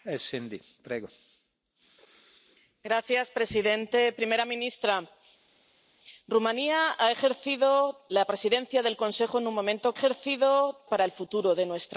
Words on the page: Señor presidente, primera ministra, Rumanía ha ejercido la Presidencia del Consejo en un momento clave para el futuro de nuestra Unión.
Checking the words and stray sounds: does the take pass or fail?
fail